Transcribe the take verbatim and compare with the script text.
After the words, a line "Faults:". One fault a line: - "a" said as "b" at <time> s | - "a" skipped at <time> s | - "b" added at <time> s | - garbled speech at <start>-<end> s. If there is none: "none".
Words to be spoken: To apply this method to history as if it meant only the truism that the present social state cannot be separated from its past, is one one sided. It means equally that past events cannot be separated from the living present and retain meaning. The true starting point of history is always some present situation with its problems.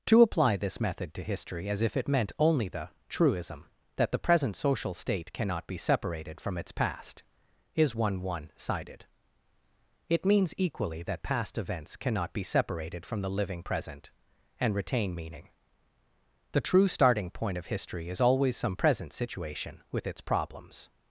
To apply this method to history as if it meant only the truism that the present social state cannot be separated from its past, is one one sided. It means equally that past events cannot be separated from the living present and retain meaning. The true starting point of history is always some present situation with its problems.
Faults:
none